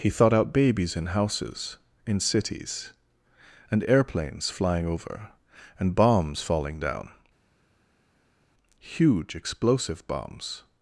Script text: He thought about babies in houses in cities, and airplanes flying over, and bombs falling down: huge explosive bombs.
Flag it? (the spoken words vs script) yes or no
yes